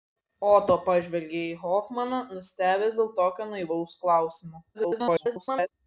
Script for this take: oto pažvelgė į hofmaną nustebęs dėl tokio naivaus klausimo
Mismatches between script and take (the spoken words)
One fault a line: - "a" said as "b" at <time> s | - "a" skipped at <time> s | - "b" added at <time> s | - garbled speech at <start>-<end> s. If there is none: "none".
- garbled speech at 4.7-5.7 s